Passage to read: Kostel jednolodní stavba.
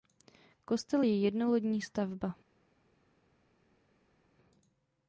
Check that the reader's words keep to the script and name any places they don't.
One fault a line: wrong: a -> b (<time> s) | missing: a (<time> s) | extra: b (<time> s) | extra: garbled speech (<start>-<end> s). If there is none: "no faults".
extra: je (1.0 s)